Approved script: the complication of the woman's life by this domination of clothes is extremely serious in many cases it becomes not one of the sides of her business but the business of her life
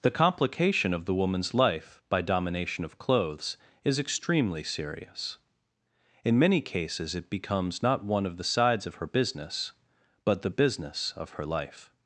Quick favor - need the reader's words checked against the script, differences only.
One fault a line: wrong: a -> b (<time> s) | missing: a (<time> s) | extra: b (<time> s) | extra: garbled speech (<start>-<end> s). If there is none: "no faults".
missing: this (2.2 s)